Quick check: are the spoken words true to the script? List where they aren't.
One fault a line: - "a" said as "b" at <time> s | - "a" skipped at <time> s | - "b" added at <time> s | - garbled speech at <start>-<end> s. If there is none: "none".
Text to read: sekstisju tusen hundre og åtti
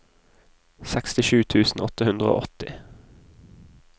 - "åtte" added at 1.9 s